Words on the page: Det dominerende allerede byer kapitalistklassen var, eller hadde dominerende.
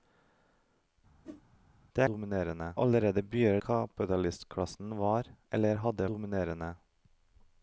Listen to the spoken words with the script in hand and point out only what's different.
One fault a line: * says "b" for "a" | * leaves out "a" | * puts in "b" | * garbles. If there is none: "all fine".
all fine